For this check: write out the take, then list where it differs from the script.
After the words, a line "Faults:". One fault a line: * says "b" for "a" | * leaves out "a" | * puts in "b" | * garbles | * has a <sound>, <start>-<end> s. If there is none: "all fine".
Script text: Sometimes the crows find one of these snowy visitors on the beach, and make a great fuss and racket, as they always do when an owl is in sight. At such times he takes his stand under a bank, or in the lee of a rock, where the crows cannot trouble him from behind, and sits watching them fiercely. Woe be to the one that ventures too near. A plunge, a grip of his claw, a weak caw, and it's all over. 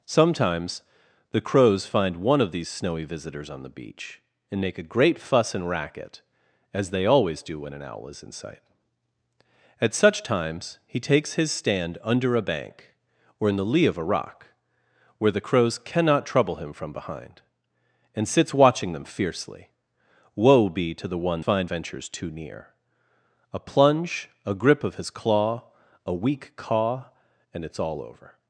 Sometimes the crows find one of these snowy visitors on the beach, and make a great fuss and racket, as they always do when an owl is in sight. At such times he takes his stand under a bank, or in the lee of a rock, where the crows cannot trouble him from behind, and sits watching them fiercely. Woe be to the one find ventures too near. A plunge, a grip of his claw, a weak caw, and it's all over.
Faults:
* says "find" for "that"